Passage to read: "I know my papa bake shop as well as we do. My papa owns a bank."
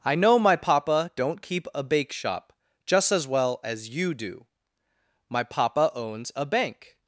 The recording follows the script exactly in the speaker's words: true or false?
false